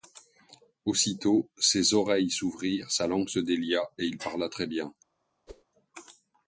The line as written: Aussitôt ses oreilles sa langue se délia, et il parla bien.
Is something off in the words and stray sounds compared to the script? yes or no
yes